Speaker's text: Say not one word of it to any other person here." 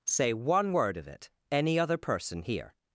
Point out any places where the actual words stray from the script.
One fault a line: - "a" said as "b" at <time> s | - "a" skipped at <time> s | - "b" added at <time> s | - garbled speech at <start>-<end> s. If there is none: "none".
- "not" skipped at 0.3 s
- "to" skipped at 1.3 s